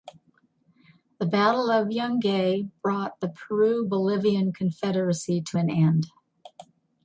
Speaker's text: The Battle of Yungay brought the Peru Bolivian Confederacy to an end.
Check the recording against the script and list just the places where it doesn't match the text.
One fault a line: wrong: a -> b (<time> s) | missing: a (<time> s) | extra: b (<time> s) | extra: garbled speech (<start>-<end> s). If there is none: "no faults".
no faults